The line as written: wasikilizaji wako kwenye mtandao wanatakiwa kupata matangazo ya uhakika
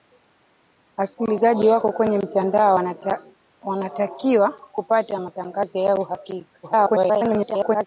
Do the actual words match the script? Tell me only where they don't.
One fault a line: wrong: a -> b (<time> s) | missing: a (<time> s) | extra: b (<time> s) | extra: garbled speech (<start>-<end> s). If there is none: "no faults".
extra: garbled speech (6.6-7.9 s)